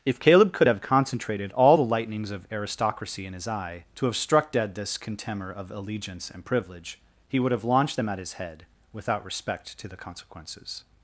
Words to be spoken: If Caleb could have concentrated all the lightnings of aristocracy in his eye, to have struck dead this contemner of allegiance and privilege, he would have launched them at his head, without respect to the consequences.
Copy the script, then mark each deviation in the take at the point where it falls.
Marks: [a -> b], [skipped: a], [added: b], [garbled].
If Caleb could have concentrated all the lightnings of aristocracy in his eye, to have struck dead this contemner of allegiance and privilege, he would have launched them at his head, without respect to the consequences.